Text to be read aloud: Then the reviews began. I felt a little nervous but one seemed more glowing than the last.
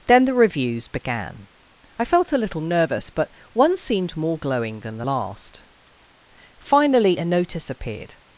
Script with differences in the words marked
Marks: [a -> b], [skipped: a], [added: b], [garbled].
Then the reviews began. I felt a little nervous but one seemed more glowing than the last. [added: Finally a notice appeared]